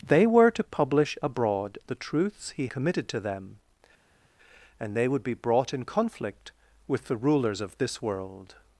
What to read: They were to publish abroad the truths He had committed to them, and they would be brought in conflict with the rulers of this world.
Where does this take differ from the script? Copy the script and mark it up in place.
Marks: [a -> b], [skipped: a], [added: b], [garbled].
They were to publish abroad the truths He [skipped: had] committed to them, and they would be brought in conflict with the rulers of this world.